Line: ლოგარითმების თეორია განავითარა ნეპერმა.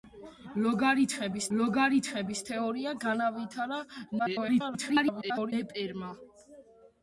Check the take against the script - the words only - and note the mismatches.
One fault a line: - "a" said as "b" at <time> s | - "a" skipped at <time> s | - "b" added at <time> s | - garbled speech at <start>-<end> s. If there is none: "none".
- "ლოგარითმების" added at 1.6 s
- garbled speech at 4.2-5.5 s